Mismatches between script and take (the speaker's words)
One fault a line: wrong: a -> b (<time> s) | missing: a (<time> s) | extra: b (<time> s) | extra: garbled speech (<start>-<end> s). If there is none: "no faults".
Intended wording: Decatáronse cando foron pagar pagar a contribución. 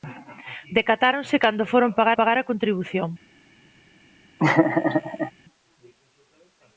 no faults